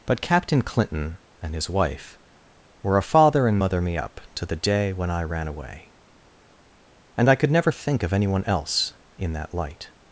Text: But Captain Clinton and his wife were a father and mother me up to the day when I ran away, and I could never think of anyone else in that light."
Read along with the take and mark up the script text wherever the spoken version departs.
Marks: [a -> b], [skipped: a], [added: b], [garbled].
But Captain Clinton and his wife were a father and mother me up to the day when I ran away, and I could never think of anyone else in that light."